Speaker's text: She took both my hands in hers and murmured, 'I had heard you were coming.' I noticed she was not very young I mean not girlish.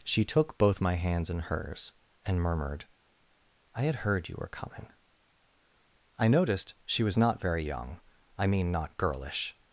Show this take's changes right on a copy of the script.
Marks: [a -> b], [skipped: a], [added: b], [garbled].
She took both my hands in hers and murmured, 'I had heard you were coming.' I noticed she was not very young I mean not girlish.